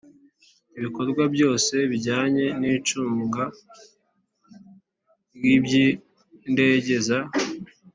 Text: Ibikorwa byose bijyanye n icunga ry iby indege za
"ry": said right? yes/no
yes